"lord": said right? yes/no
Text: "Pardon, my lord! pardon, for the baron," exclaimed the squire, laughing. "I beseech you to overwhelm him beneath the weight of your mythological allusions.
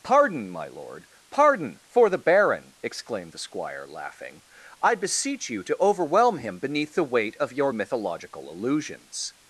yes